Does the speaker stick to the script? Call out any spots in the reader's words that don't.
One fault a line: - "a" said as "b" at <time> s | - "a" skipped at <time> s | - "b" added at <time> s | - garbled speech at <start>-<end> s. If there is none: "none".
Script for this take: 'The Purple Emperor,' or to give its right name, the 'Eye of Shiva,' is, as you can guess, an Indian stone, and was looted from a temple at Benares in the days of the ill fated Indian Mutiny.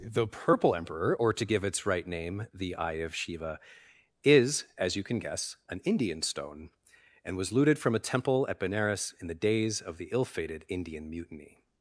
none